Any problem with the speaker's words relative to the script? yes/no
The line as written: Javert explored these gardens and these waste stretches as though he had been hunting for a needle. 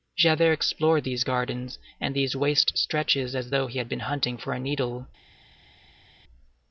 no